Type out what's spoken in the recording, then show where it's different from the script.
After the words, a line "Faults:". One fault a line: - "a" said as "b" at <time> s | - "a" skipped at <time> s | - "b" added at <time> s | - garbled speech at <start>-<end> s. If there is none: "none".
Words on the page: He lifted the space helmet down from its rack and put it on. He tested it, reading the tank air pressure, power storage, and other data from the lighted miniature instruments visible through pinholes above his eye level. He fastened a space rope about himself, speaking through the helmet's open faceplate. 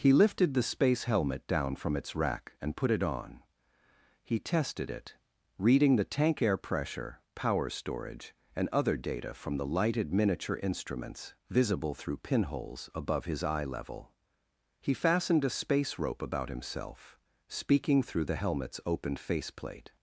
He lifted the space helmet down from its rack and put it on. He tested it, reading the tank air pressure, power storage, and other data from the lighted miniature instruments visible through pinholes above his eye level. He fastened a space rope about himself, speaking through the helmet's open faceplate.
Faults:
none